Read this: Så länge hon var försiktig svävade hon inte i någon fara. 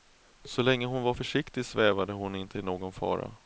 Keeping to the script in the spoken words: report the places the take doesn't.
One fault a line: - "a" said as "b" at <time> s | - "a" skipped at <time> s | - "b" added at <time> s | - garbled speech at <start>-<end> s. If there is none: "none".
none